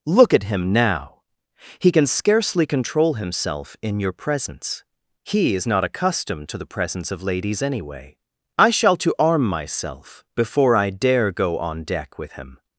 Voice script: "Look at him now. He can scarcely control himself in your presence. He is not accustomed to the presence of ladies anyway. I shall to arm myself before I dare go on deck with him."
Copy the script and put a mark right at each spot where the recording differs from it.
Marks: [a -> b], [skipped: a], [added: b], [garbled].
"Look at him now. He can scarcely control himself in your presence. He is not accustomed to the presence of ladies anyway. I shall to arm myself before I dare go on deck with him."